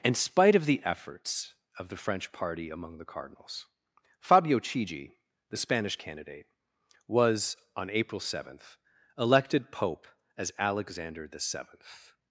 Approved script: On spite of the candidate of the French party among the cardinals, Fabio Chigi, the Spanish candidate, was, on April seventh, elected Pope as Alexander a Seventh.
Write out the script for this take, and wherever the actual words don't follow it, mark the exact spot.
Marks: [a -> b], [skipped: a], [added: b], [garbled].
[On -> In] spite of the [candidate -> efforts] of the French party among the cardinals, Fabio Chigi, the Spanish candidate, was, on April seventh, elected Pope as Alexander [a -> the] Seventh.